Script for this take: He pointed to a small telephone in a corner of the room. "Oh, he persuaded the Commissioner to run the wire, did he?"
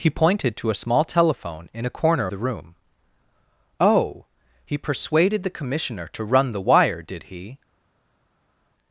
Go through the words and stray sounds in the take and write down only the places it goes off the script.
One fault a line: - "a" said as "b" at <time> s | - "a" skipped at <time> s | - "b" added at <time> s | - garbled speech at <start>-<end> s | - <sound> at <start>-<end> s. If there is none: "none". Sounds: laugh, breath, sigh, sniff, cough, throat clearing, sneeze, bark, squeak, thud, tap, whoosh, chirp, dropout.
- "of" skipped at 2.3 s